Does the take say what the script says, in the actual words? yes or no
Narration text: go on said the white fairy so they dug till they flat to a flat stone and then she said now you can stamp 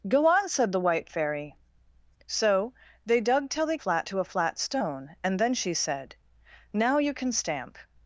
yes